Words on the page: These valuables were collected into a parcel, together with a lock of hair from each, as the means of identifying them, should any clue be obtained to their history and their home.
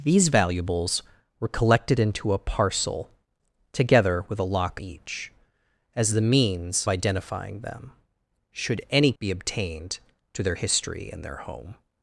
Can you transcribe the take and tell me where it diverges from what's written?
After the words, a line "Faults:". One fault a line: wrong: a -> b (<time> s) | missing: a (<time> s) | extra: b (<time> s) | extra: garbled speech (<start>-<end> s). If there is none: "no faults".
These valuables were collected into a parcel, together with a lock each, as the means identifying them, should any be obtained to their history and their home.
Faults:
missing: of hair from (4.8 s)
missing: of (6.9 s)
missing: clue (9.1 s)